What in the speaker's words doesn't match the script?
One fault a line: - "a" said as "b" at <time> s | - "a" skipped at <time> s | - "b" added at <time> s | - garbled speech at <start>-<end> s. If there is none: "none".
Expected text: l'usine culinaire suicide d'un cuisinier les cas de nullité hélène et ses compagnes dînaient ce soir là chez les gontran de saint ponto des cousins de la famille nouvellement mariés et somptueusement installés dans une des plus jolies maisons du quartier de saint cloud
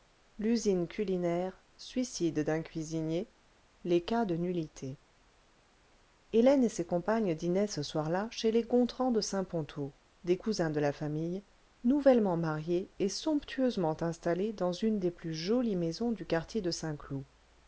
none